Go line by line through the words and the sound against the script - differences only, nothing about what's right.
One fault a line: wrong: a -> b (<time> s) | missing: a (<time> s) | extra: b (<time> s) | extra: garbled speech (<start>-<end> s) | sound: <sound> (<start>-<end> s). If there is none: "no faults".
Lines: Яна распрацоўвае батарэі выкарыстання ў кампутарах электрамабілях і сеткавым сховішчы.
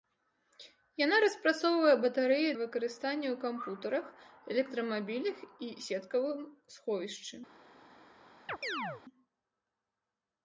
sound: chirp (8.5-9.0 s)